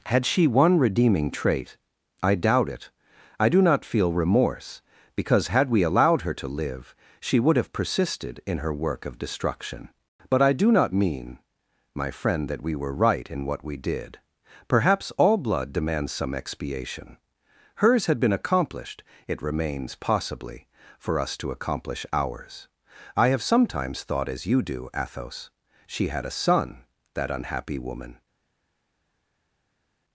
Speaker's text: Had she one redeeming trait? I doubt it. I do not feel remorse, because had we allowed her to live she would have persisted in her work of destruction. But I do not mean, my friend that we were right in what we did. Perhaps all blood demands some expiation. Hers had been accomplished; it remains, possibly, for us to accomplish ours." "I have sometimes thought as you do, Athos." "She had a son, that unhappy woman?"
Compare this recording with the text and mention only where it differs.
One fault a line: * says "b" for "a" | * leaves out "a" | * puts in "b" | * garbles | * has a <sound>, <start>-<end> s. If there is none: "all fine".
all fine